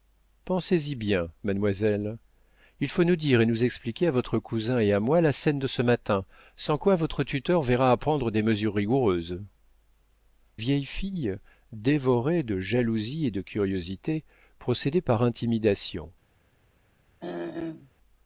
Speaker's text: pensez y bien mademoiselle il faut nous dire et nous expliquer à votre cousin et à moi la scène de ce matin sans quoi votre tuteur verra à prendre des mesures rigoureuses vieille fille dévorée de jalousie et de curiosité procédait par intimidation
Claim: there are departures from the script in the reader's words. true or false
false